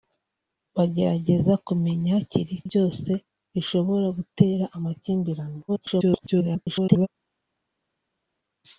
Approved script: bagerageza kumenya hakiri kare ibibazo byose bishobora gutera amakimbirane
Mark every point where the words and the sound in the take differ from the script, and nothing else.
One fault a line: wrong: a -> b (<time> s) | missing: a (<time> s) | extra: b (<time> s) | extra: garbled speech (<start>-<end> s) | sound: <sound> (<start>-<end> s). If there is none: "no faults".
missing: kare ibibazo (2.5 s)
extra: garbled speech (5.7-7.1 s)